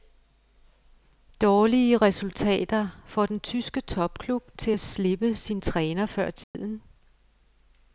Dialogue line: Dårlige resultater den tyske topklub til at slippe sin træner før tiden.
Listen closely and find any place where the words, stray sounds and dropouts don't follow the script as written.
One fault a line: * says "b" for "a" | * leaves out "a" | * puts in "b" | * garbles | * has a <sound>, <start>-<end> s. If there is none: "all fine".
* puts in "får"
* has a dropout, 6.4-6.5 s